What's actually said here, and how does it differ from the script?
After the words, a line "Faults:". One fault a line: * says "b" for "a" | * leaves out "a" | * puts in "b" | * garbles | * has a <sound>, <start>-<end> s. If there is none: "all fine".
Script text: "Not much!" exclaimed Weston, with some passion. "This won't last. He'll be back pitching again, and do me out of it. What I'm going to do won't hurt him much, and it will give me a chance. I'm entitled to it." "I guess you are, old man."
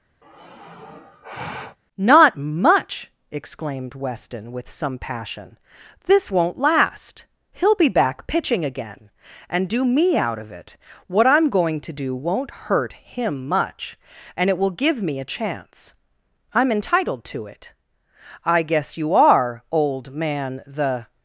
"Not much!" exclaimed Weston, with some passion. "This won't last. He'll be back pitching again, and do me out of it. What I'm going to do won't hurt him much, and it will give me a chance. I'm entitled to it." "I guess you are, old man." The
Faults:
* has a sigh, 0.2-1.8 s
* puts in "The"